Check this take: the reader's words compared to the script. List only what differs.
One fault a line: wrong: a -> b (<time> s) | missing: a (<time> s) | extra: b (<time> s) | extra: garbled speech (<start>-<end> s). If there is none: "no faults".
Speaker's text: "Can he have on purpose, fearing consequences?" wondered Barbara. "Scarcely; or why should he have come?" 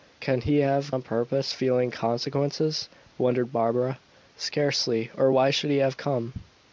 no faults